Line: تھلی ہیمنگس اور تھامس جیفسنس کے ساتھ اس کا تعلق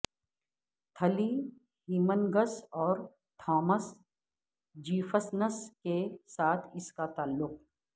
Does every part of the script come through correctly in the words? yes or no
yes